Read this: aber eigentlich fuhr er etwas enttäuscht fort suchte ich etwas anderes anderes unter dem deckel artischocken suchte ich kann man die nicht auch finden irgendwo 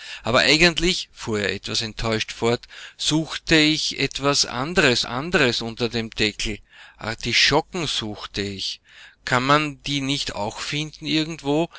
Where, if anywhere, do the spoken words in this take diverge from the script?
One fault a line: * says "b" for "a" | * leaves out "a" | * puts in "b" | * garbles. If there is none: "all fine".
all fine